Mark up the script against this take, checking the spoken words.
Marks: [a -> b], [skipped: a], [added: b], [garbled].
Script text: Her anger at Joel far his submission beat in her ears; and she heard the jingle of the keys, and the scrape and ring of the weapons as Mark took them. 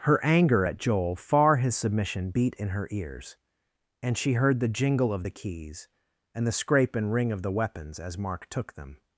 Her anger at Joel far his submission beat in her ears; and she heard the jingle of the keys, and the scrape and ring of the weapons as Mark took them.